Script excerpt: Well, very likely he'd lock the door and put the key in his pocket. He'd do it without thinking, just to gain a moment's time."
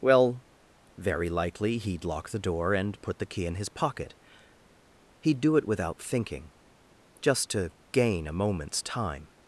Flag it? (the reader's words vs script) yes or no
no